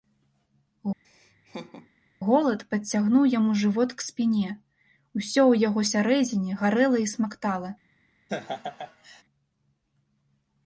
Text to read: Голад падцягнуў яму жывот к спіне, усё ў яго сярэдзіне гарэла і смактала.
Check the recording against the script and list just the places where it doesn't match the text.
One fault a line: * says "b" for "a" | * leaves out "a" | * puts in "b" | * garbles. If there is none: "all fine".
all fine